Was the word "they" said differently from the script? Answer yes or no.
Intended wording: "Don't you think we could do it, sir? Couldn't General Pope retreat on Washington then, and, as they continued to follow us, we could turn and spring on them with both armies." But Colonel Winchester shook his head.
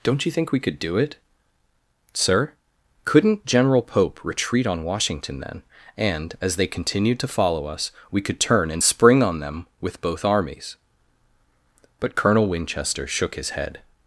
no